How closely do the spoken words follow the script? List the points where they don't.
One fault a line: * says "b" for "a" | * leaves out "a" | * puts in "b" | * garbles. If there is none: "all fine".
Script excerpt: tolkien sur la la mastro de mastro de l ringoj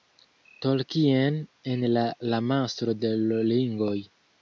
* says "en" for "sur"
* leaves out "mastro de"